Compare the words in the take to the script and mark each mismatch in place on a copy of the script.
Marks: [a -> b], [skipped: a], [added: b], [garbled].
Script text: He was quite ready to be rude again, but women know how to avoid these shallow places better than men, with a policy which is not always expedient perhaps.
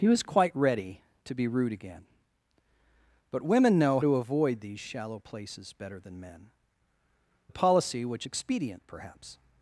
He was quite ready to be rude again, but women know [skipped: how] to avoid these shallow places better than men, [skipped: with] a policy which [skipped: is not always] expedient perhaps.